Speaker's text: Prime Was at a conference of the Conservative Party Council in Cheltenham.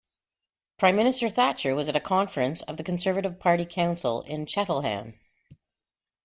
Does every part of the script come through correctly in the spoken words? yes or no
no